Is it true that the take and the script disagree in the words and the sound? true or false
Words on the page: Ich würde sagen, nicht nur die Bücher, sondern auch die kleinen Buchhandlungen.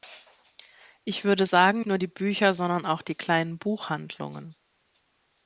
true